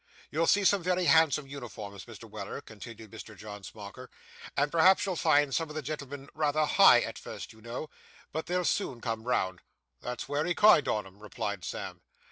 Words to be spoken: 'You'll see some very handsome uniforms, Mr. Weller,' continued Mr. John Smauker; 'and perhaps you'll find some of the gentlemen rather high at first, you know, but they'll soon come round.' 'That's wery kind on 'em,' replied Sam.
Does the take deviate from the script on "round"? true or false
false